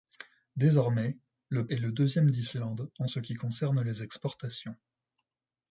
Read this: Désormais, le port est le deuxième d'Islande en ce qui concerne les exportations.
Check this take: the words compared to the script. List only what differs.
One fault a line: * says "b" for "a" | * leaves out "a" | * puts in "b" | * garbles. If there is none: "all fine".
* leaves out "port"